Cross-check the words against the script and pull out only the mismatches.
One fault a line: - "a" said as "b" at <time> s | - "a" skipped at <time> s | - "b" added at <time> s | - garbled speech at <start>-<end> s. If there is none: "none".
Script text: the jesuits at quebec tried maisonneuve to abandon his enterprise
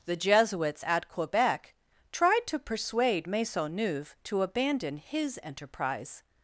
- "to persuade" added at 2.5 s